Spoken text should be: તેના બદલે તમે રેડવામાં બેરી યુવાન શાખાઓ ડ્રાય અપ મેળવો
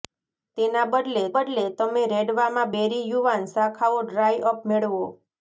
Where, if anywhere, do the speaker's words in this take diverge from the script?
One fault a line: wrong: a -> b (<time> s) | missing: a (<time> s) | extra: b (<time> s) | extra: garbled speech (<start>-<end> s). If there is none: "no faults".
extra: બદલે (1.3 s)